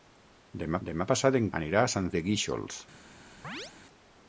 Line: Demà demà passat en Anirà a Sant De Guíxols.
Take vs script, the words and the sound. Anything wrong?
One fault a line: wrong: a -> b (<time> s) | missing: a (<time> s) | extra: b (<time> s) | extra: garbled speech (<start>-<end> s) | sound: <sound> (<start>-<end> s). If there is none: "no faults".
sound: chirp (3.4-3.7 s)